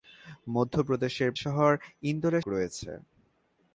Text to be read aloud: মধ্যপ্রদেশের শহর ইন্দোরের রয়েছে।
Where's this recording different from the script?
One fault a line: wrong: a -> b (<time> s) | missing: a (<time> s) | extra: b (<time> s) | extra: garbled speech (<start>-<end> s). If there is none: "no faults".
no faults